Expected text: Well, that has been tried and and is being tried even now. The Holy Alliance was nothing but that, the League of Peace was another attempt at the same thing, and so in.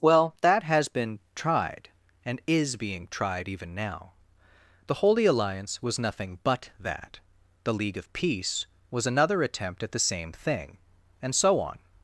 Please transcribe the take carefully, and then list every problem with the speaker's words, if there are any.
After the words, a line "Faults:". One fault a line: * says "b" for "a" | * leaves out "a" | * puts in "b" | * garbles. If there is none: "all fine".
Well, that has been tried and is being tried even now. The Holy Alliance was nothing but that, the League of Peace was another attempt at the same thing, and so on.
Faults:
* leaves out "and"
* says "on" for "in"